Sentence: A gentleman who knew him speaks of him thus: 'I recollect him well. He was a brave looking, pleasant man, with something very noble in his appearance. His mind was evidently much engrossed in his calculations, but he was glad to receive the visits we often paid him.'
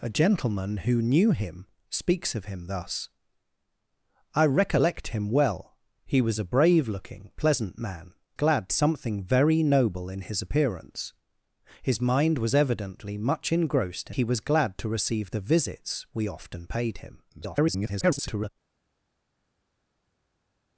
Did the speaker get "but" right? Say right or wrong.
wrong